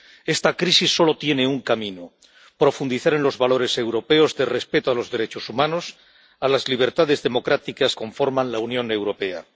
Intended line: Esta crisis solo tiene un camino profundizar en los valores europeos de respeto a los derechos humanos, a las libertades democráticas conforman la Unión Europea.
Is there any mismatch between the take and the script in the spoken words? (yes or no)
no